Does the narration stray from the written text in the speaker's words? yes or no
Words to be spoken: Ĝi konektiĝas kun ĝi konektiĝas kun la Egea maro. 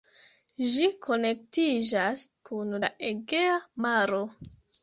yes